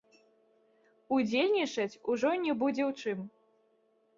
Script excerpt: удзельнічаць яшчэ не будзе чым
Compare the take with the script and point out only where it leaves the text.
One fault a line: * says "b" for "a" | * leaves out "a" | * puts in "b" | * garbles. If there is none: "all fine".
* says "ужо" for "яшчэ"
* puts in "ў"